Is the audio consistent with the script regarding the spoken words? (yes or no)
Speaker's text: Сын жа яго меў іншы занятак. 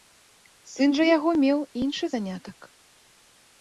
yes